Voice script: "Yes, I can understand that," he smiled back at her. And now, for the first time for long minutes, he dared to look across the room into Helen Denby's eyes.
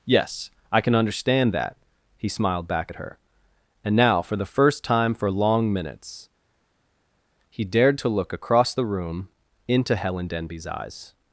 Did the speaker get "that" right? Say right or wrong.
right